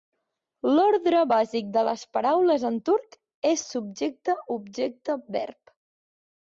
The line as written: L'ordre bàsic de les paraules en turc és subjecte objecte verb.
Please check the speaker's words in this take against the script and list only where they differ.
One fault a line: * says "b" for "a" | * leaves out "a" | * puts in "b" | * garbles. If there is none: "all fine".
all fine